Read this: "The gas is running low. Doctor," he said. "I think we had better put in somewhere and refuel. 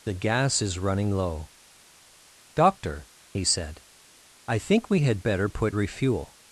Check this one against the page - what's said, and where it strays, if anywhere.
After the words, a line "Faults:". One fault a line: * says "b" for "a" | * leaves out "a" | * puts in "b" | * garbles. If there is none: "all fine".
"The gas is running low. Doctor," he said. "I think we had better put refuel.
Faults:
* leaves out "in somewhere and"